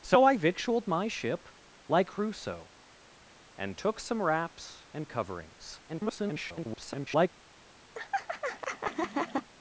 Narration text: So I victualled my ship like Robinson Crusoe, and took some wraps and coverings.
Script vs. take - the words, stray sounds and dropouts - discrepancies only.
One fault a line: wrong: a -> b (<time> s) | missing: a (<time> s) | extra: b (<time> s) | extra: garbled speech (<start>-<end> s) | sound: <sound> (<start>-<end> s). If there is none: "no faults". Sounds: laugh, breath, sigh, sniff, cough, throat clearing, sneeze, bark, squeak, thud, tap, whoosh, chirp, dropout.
missing: Robinson (2.1 s)
extra: garbled speech (5.9-7.3 s)
sound: laugh (7.9-9.5 s)